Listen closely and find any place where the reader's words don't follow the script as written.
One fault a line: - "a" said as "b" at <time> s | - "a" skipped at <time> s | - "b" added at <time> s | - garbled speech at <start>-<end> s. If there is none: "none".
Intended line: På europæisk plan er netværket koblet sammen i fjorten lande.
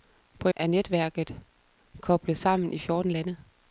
- "europæisk plan" skipped at 0.5 s